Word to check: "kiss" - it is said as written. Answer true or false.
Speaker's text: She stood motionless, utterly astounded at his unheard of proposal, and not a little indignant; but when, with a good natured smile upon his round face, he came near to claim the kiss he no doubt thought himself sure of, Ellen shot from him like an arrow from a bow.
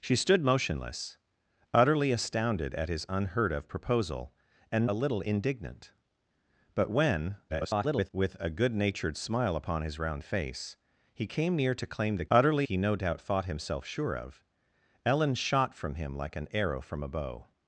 false